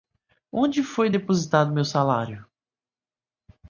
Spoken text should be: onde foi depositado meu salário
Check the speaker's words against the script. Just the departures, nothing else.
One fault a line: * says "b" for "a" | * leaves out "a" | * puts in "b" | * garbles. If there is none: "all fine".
all fine